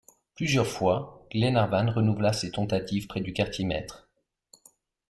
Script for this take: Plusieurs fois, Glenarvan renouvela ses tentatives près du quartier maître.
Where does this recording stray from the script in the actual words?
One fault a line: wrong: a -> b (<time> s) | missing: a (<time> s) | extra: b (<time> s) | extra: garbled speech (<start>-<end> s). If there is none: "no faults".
no faults